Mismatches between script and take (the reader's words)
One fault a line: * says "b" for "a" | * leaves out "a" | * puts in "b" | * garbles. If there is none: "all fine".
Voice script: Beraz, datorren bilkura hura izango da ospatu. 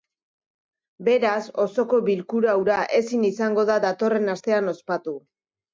* says "osoko" for "datorren"
* puts in "ezin"
* puts in "datorren astean"